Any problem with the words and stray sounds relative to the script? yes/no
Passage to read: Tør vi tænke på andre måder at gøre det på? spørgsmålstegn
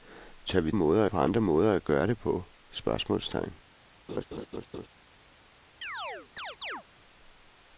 yes